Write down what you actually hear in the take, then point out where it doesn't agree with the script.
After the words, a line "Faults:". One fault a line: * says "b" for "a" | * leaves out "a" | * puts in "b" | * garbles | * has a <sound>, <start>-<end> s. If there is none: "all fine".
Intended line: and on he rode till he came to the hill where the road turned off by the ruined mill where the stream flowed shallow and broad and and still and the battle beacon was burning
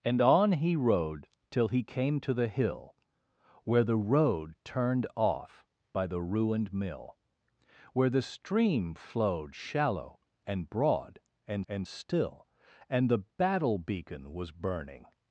and on he rode till he came to the hill where the road turned off by the ruined mill where the stream flowed shallow and broad and and still and the battle beacon was burning
Faults:
all fine